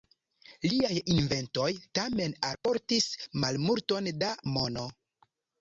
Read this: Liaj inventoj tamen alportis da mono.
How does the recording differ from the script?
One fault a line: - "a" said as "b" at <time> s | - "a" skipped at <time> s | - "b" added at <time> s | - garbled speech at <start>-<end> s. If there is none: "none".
- "malmulton" added at 3.5 s